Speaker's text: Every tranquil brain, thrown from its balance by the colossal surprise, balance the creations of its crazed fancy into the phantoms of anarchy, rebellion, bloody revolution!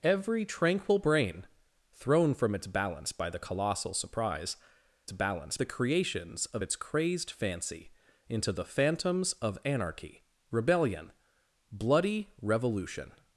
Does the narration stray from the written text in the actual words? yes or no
no